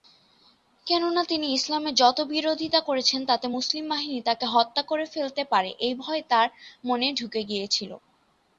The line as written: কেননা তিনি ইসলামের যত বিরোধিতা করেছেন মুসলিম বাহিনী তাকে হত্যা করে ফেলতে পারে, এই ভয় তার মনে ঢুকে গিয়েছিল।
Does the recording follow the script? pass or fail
fail